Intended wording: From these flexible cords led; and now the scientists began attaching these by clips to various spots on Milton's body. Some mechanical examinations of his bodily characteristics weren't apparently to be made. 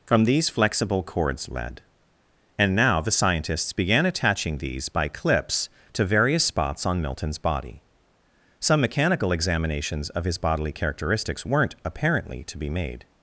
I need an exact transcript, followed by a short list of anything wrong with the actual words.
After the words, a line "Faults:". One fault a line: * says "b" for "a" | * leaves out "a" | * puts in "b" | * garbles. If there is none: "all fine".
From these flexible cords led; and now the scientists began attaching these by clips to various spots on Milton's body. Some mechanical examinations of his bodily characteristics weren't apparently to be made.
Faults:
all fine